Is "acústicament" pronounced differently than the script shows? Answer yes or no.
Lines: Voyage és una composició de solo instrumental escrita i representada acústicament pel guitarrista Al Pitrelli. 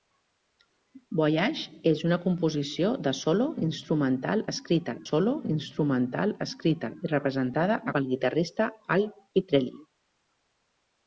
yes